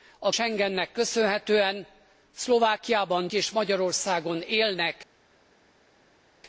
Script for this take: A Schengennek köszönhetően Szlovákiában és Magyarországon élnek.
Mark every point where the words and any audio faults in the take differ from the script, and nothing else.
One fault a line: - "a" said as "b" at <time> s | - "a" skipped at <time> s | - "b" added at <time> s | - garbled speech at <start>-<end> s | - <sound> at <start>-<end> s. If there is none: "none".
none